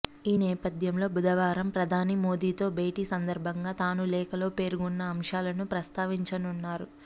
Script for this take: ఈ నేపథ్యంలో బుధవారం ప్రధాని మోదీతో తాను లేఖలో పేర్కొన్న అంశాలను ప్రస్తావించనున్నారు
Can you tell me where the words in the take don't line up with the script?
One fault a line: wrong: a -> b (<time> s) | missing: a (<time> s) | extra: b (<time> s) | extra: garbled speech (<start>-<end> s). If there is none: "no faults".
extra: భేటీ సందర్భంగా (2.8 s)